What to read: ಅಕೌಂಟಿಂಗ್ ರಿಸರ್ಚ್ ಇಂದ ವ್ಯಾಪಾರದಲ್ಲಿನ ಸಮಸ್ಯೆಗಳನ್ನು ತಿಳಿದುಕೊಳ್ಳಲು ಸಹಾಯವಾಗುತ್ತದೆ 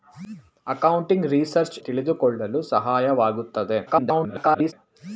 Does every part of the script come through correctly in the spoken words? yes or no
no